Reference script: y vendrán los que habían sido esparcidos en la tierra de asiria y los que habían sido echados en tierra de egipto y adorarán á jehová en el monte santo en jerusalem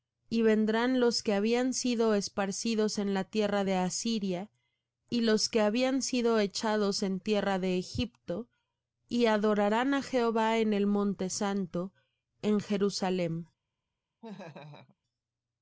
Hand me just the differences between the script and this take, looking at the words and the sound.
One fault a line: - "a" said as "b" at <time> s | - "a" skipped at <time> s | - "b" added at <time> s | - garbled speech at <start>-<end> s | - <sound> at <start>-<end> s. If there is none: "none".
- laugh at 14.2-15.0 s